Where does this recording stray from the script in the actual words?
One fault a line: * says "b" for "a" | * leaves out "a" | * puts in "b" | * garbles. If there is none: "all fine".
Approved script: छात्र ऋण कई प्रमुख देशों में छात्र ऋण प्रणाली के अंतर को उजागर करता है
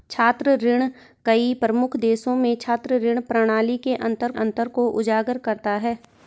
* puts in "अंतर"